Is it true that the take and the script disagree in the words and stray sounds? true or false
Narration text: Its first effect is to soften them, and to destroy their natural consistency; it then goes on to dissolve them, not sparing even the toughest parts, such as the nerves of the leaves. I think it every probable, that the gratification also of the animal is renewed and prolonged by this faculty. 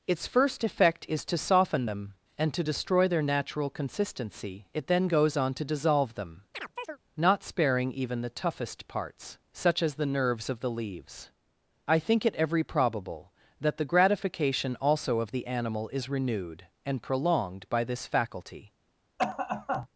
true